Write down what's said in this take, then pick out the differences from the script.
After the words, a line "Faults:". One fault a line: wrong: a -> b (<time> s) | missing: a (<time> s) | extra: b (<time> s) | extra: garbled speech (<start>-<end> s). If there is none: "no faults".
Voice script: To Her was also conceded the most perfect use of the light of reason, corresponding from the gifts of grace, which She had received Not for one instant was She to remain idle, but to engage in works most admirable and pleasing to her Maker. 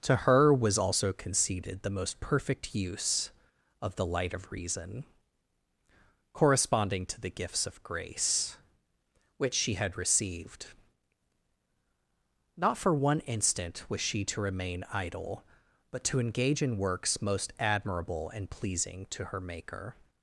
To Her was also conceded the most perfect use of the light of reason, corresponding to the gifts of grace, which She had received Not for one instant was She to remain idle, but to engage in works most admirable and pleasing to her Maker.
Faults:
wrong: from -> to (7.1 s)